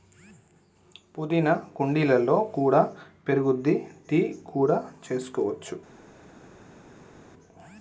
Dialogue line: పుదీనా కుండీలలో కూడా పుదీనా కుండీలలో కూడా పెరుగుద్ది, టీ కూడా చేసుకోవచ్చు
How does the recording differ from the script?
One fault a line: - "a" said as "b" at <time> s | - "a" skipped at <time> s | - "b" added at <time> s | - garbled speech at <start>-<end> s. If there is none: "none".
- "పుదీనా కుండీలలో కూడా" skipped at 2.8 s